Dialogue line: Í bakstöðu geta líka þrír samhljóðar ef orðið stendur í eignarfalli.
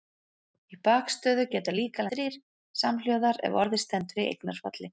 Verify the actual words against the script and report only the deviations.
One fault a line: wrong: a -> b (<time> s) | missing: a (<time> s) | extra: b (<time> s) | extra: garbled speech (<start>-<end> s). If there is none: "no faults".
no faults